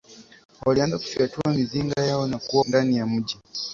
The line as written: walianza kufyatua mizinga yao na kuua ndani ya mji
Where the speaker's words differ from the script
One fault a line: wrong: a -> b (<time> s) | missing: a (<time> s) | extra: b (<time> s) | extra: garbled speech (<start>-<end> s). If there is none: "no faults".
no faults